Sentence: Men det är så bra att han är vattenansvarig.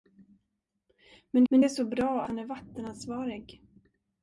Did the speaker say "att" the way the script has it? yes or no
no